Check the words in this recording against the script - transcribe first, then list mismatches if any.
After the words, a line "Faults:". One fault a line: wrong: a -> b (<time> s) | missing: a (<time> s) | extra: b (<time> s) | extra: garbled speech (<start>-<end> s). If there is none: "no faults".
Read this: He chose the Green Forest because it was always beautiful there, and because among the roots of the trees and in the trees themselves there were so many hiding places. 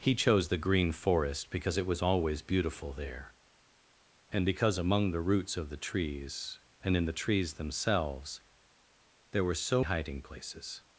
He chose the Green Forest because it was always beautiful there, and because among the roots of the trees and in the trees themselves there were so hiding places.
Faults:
missing: many (9.8 s)